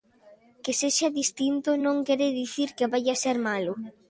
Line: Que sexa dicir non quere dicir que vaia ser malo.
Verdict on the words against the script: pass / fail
fail